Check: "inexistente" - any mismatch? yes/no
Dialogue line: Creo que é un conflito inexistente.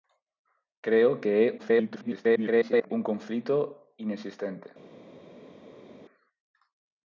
no